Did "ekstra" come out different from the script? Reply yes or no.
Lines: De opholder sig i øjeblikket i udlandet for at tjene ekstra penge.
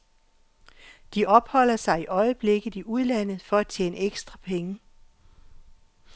no